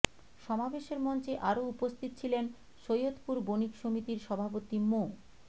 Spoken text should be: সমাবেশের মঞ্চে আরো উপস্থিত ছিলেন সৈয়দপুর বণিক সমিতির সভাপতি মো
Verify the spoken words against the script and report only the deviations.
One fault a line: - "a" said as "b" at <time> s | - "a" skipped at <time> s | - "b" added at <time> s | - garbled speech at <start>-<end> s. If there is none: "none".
none